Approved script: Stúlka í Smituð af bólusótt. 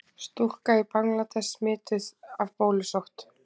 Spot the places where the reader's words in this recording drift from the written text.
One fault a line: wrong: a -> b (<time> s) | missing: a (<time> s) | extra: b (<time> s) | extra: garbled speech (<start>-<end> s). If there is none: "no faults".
extra: Bangladess (0.9 s)